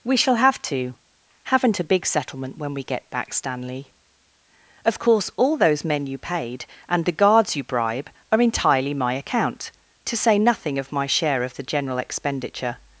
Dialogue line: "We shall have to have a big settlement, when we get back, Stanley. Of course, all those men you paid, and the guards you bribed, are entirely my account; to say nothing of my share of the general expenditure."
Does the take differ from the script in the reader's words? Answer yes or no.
yes